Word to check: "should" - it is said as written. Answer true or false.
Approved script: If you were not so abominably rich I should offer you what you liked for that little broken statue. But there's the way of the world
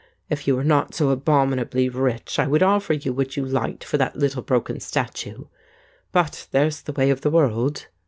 false